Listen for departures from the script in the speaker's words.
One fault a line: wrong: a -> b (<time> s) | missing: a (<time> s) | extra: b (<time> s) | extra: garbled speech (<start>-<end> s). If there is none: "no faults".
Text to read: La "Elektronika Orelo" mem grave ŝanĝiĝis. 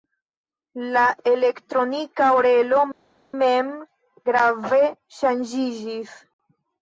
no faults